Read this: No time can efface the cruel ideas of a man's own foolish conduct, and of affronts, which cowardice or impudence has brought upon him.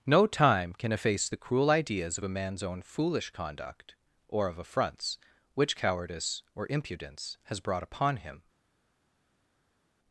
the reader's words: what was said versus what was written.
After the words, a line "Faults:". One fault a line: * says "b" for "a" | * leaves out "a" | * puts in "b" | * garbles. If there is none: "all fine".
No time can efface the cruel ideas of a man's own foolish conduct, or of affronts, which cowardice or impudence has brought upon him.
Faults:
* says "or" for "and"